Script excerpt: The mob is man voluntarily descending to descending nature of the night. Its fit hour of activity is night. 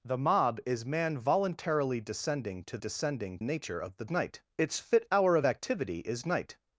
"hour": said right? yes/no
yes